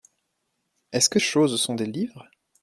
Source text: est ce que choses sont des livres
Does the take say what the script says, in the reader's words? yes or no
yes